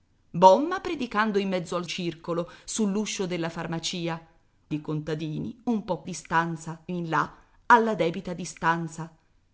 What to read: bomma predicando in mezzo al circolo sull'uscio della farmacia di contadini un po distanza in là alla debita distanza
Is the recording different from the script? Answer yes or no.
no